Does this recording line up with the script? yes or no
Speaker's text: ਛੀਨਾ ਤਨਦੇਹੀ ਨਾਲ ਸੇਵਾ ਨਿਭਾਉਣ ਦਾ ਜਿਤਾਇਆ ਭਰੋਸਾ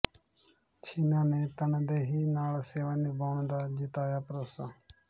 no